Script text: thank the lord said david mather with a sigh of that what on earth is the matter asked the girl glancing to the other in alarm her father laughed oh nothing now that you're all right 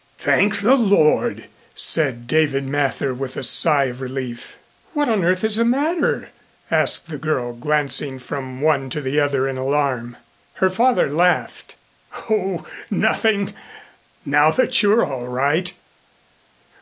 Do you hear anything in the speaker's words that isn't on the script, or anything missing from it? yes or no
yes